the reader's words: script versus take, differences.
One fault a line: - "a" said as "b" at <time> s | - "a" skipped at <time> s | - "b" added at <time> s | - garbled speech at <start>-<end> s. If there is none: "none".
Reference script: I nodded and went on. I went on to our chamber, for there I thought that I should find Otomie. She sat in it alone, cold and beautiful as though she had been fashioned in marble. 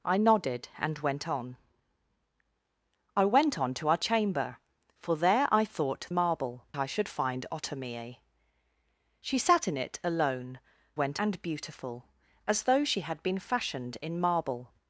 - "that" said as "marble" at 6.1 s
- "cold" said as "went" at 10.9 s